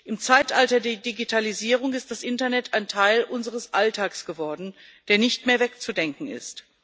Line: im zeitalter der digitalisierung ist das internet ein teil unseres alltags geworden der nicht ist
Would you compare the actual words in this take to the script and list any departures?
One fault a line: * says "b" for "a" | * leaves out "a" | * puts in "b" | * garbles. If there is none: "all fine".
* puts in "mehr wegzudenken"